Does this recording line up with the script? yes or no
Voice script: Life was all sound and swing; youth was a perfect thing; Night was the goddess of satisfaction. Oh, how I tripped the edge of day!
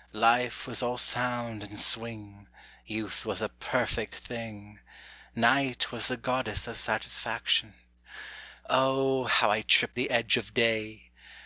yes